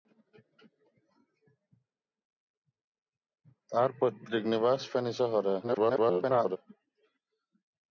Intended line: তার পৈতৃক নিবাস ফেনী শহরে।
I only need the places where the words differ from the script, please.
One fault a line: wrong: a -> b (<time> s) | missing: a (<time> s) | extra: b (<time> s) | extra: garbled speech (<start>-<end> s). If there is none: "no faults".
extra: garbled speech (5.6-6.6 s)